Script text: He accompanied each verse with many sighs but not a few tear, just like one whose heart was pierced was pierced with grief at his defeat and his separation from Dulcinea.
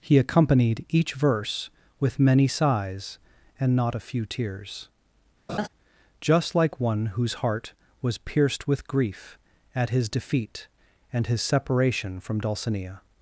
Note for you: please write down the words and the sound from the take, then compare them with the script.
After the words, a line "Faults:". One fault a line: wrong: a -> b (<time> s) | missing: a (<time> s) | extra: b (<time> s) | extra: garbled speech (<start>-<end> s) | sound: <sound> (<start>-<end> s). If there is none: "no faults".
He accompanied each verse with many sighs and not a few tears, just like one whose heart was pierced with grief at his defeat and his separation from Dulcinea.
Faults:
wrong: but -> and (3.6 s)
wrong: tear -> tears (4.2 s)
sound: laugh (5.5-5.7 s)
missing: was pierced (8.7 s)